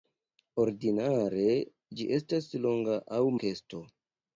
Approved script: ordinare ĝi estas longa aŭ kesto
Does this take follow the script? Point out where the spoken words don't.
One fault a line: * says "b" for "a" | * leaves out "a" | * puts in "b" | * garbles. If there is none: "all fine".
all fine